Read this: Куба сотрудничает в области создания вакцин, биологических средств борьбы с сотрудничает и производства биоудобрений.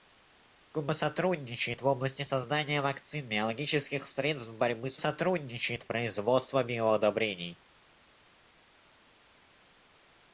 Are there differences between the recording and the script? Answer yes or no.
no